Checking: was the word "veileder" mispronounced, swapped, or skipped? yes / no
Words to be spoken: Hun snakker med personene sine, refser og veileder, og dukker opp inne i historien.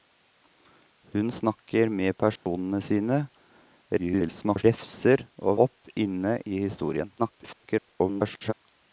yes